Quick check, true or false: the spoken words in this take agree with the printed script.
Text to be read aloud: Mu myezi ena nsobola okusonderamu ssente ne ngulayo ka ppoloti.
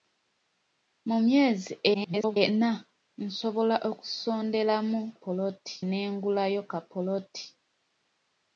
false